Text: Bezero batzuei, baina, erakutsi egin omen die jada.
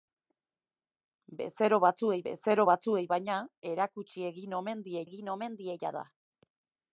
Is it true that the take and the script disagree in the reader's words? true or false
true